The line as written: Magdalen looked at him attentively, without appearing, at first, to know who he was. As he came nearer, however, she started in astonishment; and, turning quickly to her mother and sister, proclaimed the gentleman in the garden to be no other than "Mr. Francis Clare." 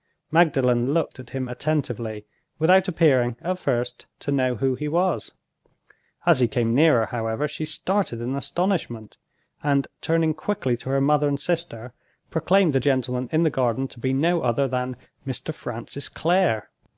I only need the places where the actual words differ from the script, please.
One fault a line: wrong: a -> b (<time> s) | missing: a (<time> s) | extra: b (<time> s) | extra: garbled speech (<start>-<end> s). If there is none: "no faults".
no faults